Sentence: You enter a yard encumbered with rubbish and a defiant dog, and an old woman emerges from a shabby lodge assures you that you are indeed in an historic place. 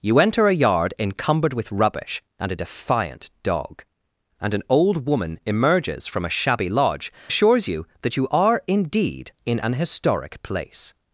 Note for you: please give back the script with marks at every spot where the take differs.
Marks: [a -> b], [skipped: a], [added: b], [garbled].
You enter a yard encumbered with rubbish and a defiant dog, and an old woman emerges from a shabby lodge assures you that you are indeed in an historic place.